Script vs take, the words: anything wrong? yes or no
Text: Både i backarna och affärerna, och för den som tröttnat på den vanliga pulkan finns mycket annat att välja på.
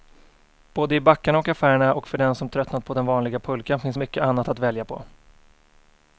no